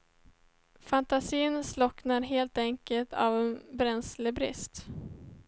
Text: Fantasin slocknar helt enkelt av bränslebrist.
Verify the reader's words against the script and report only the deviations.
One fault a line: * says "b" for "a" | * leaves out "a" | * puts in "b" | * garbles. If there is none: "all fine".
all fine